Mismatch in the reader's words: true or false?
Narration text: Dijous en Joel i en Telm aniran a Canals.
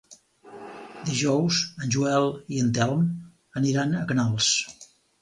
false